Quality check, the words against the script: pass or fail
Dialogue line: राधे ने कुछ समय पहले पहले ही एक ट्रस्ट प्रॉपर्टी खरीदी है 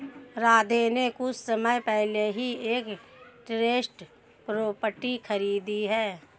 fail